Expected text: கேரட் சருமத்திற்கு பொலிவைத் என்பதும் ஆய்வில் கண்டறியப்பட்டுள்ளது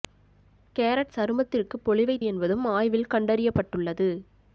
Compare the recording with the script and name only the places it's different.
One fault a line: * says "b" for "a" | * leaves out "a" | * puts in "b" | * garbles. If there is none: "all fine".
all fine